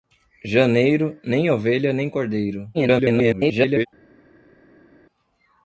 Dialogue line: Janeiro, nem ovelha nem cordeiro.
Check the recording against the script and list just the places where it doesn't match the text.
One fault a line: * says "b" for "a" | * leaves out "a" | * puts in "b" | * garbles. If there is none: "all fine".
* garbles